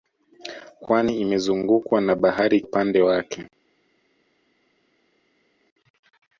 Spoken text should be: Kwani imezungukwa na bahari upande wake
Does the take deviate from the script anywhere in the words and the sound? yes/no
no